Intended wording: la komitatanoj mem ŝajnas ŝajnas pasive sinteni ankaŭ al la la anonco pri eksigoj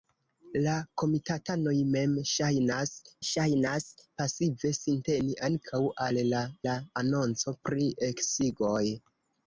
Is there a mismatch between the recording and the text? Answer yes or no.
no